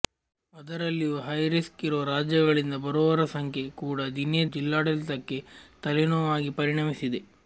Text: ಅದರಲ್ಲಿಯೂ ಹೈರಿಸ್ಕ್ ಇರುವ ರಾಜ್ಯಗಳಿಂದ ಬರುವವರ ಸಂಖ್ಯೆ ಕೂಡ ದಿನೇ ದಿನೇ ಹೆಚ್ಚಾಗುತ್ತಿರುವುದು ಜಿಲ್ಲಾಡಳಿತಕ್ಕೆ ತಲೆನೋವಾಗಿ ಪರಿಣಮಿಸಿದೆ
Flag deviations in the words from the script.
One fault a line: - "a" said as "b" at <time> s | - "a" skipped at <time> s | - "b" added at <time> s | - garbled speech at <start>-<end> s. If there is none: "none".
- "ದಿನೇ ಹೆಚ್ಚಾಗುತ್ತಿರುವುದು" skipped at 4.4 s